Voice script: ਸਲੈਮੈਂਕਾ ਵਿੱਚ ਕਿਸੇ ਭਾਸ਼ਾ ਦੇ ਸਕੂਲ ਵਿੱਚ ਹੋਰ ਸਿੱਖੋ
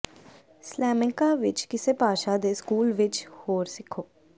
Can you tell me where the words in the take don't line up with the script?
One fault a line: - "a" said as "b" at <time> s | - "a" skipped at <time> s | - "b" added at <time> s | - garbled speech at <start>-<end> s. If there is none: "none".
none